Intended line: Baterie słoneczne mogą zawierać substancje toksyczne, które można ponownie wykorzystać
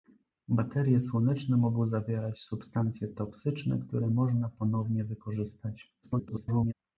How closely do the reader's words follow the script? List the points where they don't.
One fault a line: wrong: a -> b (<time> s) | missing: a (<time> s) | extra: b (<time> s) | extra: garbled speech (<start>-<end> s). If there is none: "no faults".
extra: garbled speech (6.0-6.7 s)